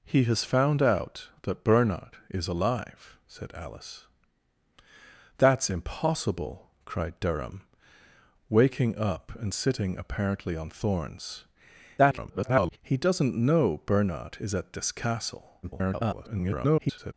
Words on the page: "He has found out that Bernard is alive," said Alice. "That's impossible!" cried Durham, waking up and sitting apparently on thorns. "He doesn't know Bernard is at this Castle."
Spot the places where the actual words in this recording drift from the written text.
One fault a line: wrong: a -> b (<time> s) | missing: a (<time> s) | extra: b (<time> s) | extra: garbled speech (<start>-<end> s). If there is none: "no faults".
extra: garbled speech (12.0-12.8 s)
extra: garbled speech (15.6-17.1 s)